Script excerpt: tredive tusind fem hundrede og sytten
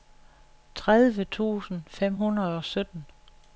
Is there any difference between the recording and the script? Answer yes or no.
no